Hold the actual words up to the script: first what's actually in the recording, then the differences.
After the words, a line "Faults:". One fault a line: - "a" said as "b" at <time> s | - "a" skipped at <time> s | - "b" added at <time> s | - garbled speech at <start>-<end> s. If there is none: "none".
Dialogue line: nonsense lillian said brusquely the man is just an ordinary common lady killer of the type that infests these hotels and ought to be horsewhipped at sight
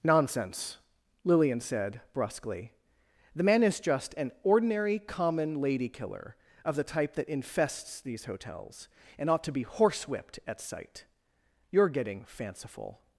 nonsense lillian said brusquely the man is just an ordinary common lady killer of the type that infests these hotels and ought to be horsewhipped at sight you're getting fanciful
Faults:
- "you're getting fanciful" added at 11.7 s